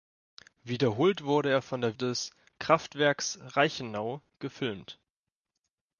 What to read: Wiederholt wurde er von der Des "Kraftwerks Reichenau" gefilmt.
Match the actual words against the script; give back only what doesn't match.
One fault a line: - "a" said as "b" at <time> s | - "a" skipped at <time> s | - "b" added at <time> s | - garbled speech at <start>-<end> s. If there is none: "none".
none